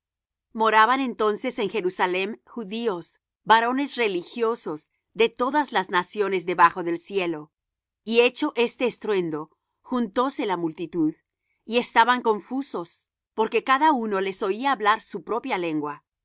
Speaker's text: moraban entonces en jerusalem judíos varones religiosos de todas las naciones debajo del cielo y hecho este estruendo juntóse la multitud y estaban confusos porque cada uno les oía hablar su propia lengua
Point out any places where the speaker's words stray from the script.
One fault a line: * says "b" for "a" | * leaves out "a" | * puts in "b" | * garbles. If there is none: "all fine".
all fine